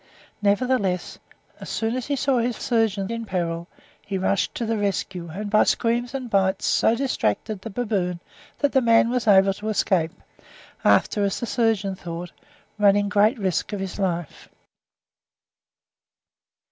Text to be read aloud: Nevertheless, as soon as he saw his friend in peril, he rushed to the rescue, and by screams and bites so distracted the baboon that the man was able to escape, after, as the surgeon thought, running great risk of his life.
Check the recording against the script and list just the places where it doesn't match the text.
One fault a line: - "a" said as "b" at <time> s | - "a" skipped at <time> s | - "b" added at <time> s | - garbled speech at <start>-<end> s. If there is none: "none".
- "friend" said as "surgeon" at 2.6 s